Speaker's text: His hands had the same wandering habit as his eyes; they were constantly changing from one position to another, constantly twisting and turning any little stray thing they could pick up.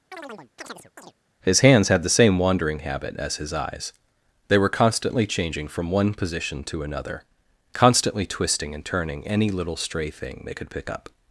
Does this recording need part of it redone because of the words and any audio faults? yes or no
yes